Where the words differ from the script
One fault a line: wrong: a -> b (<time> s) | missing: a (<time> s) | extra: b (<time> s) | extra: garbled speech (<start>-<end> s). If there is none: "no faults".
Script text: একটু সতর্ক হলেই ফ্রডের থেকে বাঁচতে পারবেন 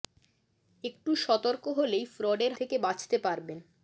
no faults